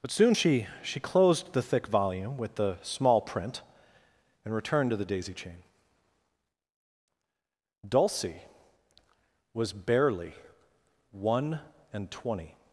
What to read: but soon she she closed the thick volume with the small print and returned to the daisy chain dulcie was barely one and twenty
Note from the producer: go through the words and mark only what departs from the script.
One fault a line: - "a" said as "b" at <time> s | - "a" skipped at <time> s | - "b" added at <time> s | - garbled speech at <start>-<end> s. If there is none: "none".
none